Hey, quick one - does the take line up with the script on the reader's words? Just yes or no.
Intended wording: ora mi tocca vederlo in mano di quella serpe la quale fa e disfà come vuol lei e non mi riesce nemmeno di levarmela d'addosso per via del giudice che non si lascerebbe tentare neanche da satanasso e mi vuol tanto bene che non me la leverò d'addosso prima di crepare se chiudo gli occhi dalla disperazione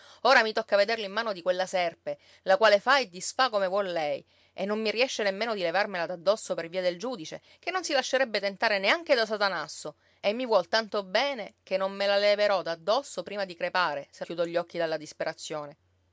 yes